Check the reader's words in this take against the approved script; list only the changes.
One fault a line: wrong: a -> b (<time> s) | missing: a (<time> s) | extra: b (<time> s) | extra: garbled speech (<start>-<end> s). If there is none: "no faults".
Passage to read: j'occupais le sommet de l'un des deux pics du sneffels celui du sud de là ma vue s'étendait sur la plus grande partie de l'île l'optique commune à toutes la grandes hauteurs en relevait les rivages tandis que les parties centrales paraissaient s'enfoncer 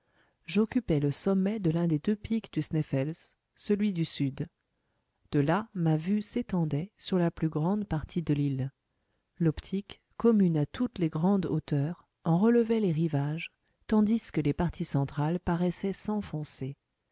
wrong: la -> les (11.0 s)